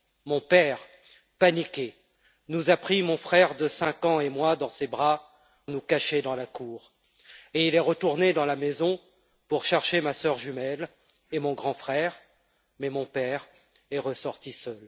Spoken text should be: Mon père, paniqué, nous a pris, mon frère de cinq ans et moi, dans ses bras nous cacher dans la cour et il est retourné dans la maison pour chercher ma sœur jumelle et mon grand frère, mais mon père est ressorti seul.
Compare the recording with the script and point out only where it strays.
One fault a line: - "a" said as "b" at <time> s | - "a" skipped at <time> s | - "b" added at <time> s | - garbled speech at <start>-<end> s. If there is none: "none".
none